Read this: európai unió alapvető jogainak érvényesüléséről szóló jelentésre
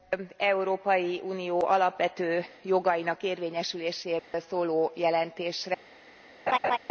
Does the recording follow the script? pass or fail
pass